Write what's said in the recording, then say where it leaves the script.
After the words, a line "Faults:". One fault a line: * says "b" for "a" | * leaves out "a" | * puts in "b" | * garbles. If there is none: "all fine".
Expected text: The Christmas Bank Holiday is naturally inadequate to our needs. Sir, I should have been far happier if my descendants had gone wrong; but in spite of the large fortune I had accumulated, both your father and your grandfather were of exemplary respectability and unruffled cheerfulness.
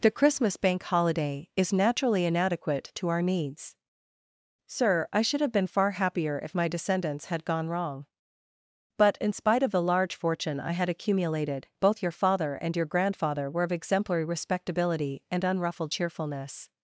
The Christmas Bank Holiday is naturally inadequate to our needs. Sir, I should have been far happier if my descendants had gone wrong; but in spite of the large fortune I had accumulated, both your father and your grandfather were of exemplary respectability and unruffled cheerfulness.
Faults:
all fine